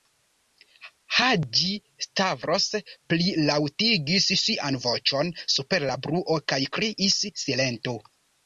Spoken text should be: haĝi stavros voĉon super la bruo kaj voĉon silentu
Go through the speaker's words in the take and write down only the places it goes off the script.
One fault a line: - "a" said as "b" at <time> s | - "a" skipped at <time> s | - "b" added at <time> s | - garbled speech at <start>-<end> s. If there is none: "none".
- "plilaŭtigis sian" added at 3.1 s
- "voĉon" said as "kriis" at 6.8 s